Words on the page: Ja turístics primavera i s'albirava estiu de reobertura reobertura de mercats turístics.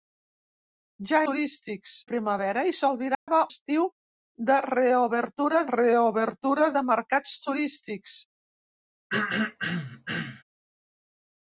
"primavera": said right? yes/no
yes